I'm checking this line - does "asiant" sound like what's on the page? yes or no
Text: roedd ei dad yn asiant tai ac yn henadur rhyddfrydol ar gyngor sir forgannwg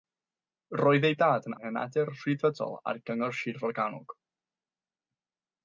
no